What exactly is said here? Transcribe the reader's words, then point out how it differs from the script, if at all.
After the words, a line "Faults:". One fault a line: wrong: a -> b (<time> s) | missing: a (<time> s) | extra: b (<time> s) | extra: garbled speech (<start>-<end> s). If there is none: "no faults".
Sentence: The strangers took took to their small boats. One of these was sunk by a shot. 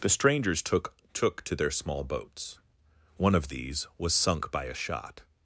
The strangers took took to their small boats. One of these was sunk by a shot.
Faults:
no faults